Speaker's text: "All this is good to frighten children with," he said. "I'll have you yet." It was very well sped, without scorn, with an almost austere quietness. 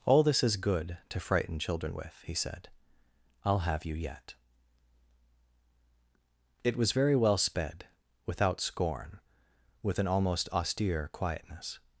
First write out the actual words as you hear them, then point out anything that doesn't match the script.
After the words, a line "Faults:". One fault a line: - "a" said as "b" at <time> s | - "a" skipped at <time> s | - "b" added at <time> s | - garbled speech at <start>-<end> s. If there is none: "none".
"All this is good to frighten children with," he said. "I'll have you yet." It was very well sped, without scorn, with an almost austere quietness.
Faults:
none